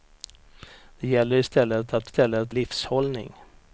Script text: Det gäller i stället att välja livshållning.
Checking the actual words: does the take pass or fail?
fail